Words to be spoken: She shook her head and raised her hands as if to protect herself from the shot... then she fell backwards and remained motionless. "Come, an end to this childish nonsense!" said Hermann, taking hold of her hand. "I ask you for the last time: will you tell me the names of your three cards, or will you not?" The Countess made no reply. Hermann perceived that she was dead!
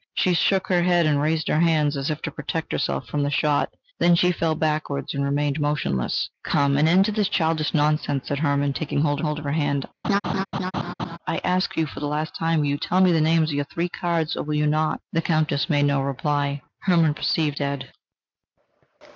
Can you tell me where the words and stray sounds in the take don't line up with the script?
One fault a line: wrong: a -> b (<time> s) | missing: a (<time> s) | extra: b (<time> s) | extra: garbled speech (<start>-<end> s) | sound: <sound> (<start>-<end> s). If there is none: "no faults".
extra: hold (9.2 s)
sound: laugh (10.0-11.2 s)
missing: that she was (17.6 s)